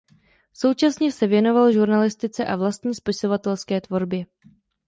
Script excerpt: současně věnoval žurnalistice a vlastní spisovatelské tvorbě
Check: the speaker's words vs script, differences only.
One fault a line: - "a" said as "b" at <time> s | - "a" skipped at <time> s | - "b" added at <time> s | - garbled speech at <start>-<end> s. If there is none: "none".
- "se" added at 1.1 s